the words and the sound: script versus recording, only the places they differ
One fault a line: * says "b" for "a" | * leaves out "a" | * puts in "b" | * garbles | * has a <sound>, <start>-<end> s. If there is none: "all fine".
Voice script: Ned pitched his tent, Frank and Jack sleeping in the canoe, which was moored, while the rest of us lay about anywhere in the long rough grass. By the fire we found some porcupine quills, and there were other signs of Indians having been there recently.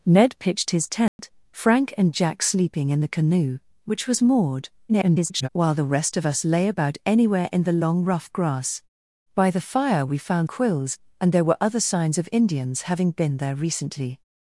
* has a dropout, 1.1-1.2 s
* garbles
* leaves out "some porcupine"